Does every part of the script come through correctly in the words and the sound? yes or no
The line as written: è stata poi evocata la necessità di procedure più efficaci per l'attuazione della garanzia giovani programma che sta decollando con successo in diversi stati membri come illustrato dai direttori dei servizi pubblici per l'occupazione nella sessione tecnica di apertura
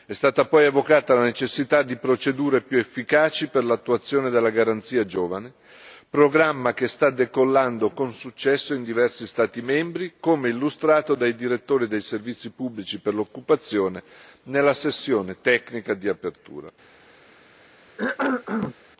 no